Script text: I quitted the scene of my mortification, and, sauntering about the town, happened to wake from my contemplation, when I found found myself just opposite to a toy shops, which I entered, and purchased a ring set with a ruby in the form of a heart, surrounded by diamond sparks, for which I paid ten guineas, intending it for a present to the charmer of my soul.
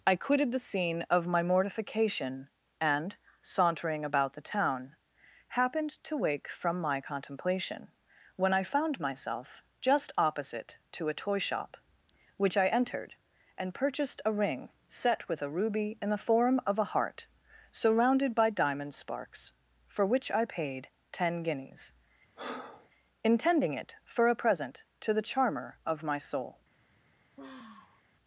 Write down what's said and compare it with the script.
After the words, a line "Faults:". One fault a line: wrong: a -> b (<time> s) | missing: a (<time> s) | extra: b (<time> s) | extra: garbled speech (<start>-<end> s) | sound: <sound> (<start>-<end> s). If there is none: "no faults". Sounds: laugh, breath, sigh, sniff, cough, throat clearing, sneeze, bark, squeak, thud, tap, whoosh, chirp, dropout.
I quitted the scene of my mortification, and, sauntering about the town, happened to wake from my contemplation, when I found myself just opposite to a toy shop, which I entered, and purchased a ring set with a ruby in the form of a heart, surrounded by diamond sparks, for which I paid ten guineas, intending it for a present to the charmer of my soul.
Faults:
missing: found (9.0 s)
wrong: shops -> shop (11.4 s)
sound: breath (22.4-22.9 s)
sound: sigh (27.4-28.0 s)